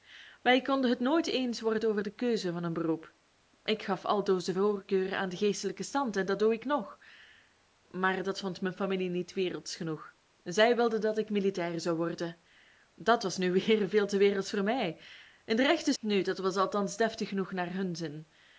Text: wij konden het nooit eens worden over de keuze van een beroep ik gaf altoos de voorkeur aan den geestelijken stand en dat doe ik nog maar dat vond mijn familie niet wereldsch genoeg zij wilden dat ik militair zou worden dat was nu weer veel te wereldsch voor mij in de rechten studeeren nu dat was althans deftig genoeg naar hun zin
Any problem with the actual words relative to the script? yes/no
yes